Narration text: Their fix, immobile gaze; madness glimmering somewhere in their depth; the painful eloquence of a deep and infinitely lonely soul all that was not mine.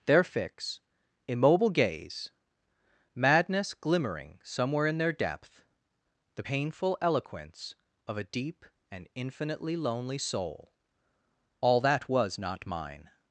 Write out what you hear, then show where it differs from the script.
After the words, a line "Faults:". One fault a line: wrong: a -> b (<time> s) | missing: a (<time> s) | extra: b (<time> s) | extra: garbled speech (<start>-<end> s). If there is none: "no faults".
Their fix, immobile gaze; madness glimmering somewhere in their depth; the painful eloquence of a deep and infinitely lonely soul all that was not mine.
Faults:
no faults